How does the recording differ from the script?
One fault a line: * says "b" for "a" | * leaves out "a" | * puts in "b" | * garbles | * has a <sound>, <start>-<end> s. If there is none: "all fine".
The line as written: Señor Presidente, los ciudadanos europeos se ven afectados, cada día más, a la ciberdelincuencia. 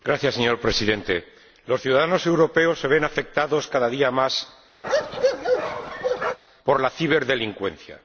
* has a bark, 4.8-6.4 s
* says "por" for "a"